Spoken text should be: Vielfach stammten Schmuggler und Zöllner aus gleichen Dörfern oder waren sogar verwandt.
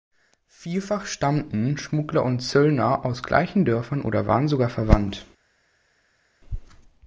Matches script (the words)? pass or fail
pass